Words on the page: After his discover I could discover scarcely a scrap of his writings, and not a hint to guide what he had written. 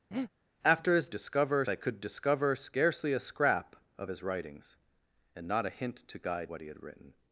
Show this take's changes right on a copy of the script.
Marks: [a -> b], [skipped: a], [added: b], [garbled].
After his discover I could discover scarcely a scrap of his writings, and not a hint to guide what he had written.